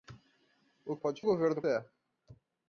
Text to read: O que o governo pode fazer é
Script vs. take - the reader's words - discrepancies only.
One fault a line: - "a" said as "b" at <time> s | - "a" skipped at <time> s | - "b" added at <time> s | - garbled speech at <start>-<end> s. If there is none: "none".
- "que" said as "pode" at 1.0 s
- "pode fazer" skipped at 1.6 s